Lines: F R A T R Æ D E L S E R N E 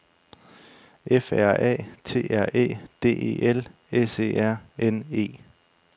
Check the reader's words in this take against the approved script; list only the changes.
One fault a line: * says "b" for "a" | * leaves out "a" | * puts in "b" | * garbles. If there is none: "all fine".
all fine